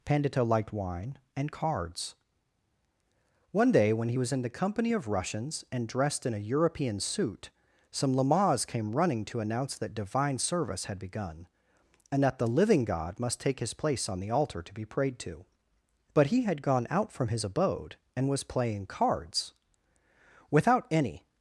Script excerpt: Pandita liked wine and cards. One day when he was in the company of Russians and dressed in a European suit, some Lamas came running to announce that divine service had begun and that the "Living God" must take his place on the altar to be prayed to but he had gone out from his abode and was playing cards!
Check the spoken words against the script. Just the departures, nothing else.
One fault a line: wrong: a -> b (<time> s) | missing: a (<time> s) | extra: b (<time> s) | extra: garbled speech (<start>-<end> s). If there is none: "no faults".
extra: Without any (20.5 s)